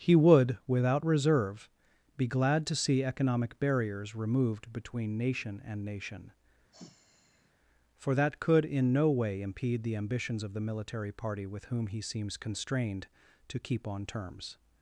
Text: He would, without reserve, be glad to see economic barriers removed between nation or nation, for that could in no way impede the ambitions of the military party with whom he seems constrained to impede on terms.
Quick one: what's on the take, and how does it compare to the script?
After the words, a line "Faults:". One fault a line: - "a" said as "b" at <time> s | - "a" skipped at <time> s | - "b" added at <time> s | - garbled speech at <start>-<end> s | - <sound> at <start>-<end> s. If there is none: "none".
He would, without reserve, be glad to see economic barriers removed between nation and nation, for that could in no way impede the ambitions of the military party with whom he seems constrained to keep on terms.
Faults:
- "or" said as "and" at 5.6 s
- sigh at 6.7-7.5 s
- "impede" said as "keep" at 13.6 s